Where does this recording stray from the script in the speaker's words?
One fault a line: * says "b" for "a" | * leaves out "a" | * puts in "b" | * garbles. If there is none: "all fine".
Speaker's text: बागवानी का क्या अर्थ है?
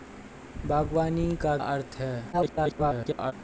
* leaves out "क्या"
* garbles